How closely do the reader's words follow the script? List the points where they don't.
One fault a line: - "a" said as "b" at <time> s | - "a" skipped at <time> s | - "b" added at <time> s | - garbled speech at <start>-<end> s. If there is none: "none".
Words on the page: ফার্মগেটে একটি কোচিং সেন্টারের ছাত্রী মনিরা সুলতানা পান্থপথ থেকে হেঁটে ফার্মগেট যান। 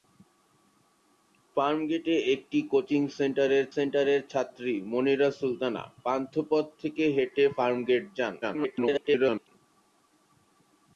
- "সেন্টারের" added at 3.7 s
- garbled speech at 8.4-9.5 s